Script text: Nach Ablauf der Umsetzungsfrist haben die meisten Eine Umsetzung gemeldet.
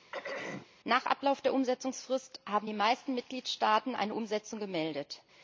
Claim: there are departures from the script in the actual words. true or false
true